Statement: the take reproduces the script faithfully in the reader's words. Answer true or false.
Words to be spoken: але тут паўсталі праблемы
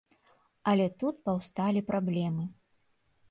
true